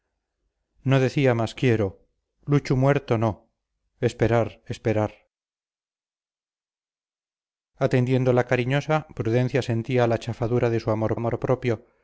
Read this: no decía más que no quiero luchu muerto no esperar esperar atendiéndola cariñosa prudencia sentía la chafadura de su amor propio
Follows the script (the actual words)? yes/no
no